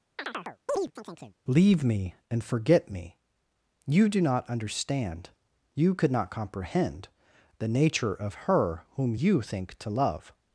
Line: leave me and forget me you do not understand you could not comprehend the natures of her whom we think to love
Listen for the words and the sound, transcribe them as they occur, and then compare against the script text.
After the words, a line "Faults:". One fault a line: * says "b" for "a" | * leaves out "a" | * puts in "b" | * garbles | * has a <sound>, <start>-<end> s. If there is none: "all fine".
leave me and forget me you do not understand you could not comprehend the nature of her whom you think to love
Faults:
* has a chirp, 0.2-1.4 s
* says "nature" for "natures"
* says "you" for "we"